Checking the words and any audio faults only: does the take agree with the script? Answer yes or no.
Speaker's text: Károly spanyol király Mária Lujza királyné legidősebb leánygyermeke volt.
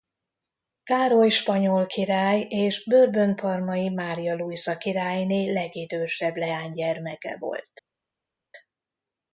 no